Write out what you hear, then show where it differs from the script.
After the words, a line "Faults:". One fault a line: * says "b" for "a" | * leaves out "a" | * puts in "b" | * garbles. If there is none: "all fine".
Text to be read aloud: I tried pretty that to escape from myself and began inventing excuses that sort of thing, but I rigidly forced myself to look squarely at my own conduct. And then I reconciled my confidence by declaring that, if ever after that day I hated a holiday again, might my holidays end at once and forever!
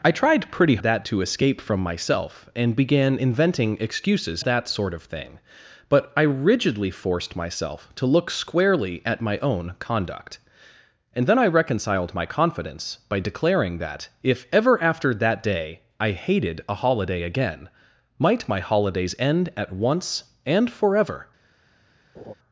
I tried pretty that to escape from myself and began inventing excuses that sort of thing, but I rigidly forced myself to look squarely at my own conduct. And then I reconciled my confidence by declaring that, if ever after that day I hated a holiday again, might my holidays end at once and forever!
Faults:
all fine